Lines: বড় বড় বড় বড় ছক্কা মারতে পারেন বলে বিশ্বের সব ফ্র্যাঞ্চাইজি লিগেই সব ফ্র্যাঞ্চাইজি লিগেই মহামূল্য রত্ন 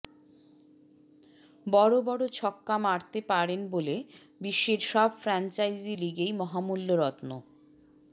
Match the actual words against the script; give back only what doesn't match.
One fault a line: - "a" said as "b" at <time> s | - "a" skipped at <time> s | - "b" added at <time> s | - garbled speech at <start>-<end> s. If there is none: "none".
- "বড় বড়" skipped at 2.2 s
- "সব ফ্র্যাঞ্চাইজি লিগেই" skipped at 6.3 s